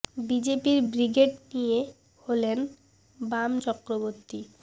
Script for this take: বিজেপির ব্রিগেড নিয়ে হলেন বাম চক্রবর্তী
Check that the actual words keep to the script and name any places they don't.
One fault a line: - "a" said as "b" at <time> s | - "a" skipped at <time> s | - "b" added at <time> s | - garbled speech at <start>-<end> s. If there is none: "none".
none